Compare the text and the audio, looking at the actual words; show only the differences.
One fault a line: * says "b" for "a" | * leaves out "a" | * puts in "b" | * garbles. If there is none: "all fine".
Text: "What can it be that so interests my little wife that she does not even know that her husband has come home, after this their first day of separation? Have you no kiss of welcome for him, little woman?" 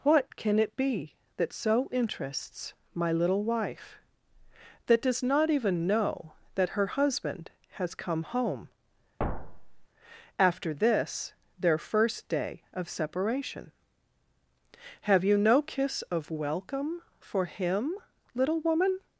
* leaves out "she"